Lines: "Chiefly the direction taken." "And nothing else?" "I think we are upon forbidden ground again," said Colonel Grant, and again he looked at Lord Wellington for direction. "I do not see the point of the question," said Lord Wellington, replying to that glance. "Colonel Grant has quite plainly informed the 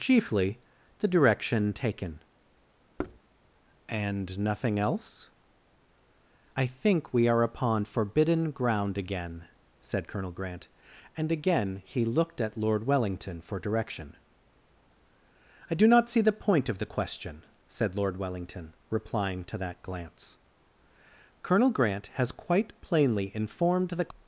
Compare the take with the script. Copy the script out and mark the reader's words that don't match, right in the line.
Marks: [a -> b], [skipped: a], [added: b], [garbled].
"Chiefly the direction taken." "And nothing else?" "I think we are upon forbidden ground again," said Colonel Grant, and again he looked at Lord Wellington for direction. "I do not see the point of the question," said Lord Wellington, replying to that glance. "Colonel Grant has quite plainly informed the